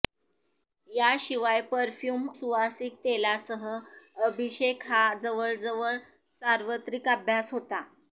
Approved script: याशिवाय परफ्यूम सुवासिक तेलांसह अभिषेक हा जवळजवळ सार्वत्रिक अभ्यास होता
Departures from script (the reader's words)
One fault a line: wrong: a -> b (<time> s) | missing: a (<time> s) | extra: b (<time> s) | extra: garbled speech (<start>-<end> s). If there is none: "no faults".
no faults